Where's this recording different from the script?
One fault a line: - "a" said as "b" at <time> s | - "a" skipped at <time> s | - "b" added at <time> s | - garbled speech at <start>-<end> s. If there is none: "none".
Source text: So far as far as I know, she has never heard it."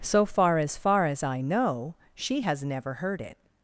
none